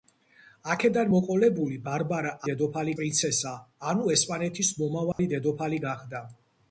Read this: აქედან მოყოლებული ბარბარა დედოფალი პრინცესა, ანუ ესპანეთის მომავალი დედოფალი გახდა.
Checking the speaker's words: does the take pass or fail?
pass